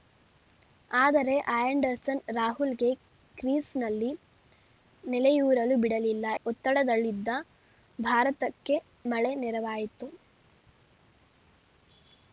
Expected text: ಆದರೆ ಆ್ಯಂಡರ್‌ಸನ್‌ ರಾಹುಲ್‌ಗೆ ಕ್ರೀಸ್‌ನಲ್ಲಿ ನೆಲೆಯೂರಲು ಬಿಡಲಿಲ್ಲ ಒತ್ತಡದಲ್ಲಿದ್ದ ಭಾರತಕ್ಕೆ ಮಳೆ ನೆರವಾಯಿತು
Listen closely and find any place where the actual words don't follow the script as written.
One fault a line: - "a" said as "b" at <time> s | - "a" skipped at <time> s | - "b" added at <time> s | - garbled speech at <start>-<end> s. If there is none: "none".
none